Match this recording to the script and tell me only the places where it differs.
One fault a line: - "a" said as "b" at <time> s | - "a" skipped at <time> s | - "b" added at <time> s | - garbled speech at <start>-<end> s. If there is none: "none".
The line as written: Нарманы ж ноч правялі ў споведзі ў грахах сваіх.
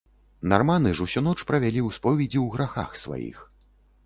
- "усю" added at 1.1 s